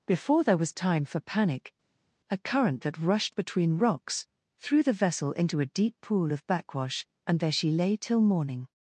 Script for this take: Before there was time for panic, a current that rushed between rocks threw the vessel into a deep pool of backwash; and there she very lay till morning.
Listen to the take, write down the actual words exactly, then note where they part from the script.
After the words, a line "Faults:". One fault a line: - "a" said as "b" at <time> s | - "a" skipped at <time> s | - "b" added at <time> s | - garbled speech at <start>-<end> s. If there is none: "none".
Before there was time for panic, a current that rushed between rocks threw the vessel into a deep pool of backwash; and there she lay till morning.
Faults:
- "very" skipped at 7.7 s